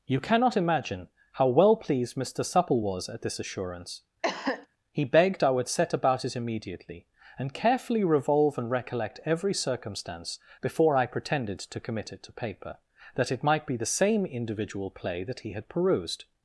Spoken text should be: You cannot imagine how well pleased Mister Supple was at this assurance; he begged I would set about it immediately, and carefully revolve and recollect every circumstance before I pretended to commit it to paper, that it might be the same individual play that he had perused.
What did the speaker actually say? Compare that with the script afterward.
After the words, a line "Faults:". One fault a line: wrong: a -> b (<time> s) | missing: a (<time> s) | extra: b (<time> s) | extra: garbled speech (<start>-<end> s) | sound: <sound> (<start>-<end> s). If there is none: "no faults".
You cannot imagine how well pleased Mister Supple was at this assurance; he begged I would set about it immediately, and carefully revolve and recollect every circumstance before I pretended to commit it to paper, that it might be the same individual play that he had perused.
Faults:
sound: cough (4.2-4.7 s)